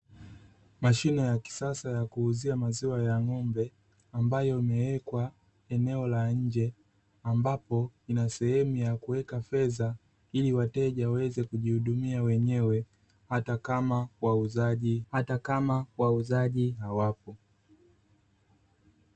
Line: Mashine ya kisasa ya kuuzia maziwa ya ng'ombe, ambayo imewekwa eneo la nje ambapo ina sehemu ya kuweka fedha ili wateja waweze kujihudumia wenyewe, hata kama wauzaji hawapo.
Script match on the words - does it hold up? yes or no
no